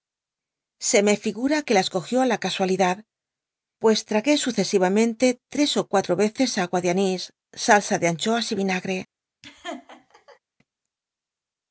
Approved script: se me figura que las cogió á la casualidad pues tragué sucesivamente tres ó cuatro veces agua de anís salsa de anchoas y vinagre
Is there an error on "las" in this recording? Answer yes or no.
no